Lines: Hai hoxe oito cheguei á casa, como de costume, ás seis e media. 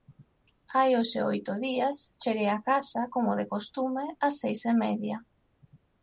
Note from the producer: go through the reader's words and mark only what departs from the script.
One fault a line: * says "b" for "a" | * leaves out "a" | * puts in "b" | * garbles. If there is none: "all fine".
* puts in "días"